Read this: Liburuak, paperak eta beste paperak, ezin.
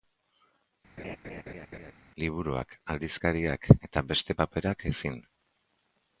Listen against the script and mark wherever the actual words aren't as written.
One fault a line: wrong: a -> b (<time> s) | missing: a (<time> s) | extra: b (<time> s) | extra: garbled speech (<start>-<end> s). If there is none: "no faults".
wrong: paperak -> aldizkariak (2.9 s)